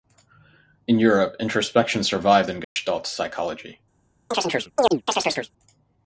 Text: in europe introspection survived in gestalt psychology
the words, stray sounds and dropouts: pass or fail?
fail